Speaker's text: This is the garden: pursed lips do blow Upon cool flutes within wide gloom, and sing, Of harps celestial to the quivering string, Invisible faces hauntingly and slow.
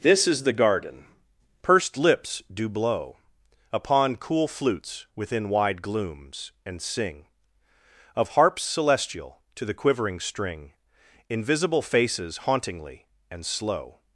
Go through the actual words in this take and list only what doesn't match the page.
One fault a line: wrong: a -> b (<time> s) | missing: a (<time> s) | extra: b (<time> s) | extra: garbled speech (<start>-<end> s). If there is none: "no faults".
wrong: gloom -> glooms (5.8 s)